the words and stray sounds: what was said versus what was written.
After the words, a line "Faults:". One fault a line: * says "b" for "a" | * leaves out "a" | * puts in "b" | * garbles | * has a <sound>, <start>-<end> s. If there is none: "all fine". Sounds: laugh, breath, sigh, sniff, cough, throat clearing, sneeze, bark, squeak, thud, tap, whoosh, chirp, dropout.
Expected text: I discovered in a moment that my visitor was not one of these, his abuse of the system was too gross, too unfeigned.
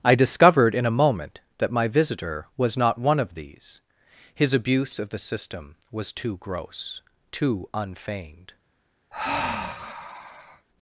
I discovered in a moment that my visitor was not one of these, his abuse of the system was too gross, too unfeigned.
Faults:
* has a sigh, 9.1-10.7 s